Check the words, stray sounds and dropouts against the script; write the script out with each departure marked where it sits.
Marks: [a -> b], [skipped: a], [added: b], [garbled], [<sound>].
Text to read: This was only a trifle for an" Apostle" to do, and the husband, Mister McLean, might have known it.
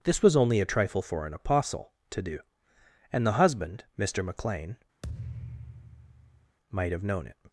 This was only a trifle for an" Apostle" to do, and the husband, Mister McLean, [thud] might have known it.